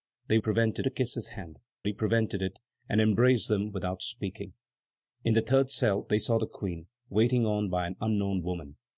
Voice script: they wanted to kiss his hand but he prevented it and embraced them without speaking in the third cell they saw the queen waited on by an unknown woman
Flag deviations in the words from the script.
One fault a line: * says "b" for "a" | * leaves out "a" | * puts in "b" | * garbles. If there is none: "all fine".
* says "prevented" for "wanted"
* leaves out "but"